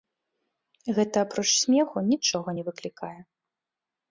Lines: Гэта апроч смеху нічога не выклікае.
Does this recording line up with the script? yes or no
yes